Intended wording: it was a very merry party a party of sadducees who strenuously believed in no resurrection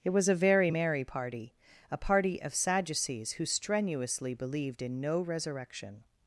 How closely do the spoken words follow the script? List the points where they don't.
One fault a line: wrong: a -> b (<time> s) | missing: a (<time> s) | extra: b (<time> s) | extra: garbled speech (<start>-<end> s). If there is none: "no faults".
no faults